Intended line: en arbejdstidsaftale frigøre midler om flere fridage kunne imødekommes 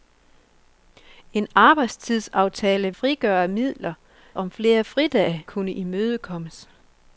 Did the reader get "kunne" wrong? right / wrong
right